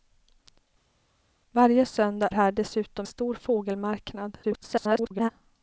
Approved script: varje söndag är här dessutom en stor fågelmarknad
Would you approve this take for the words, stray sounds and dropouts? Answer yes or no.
no